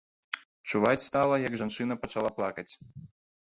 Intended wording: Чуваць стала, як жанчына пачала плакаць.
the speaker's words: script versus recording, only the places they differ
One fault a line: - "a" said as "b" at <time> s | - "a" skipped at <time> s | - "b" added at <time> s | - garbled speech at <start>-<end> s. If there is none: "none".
none